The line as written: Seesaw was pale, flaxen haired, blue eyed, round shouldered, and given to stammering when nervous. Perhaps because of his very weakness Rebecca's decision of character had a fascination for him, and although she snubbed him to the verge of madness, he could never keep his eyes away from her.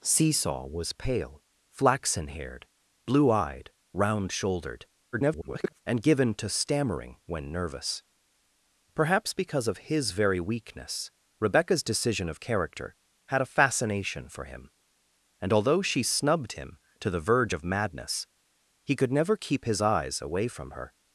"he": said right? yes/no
yes